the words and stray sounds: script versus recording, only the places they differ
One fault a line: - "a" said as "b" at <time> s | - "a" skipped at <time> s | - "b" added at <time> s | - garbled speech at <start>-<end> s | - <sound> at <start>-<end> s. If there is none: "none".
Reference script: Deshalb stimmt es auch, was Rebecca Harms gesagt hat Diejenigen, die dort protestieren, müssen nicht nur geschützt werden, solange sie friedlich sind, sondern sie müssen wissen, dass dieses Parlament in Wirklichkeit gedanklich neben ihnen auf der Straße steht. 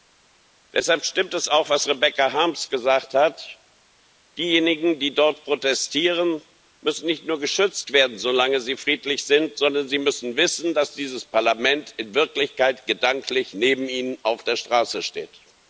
none